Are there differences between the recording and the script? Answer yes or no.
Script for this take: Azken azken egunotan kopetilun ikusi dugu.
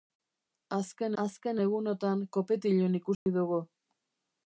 no